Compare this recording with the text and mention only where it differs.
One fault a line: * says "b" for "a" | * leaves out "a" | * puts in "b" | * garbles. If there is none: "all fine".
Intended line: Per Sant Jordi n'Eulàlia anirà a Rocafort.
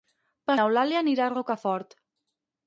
* leaves out "Sant Jordi"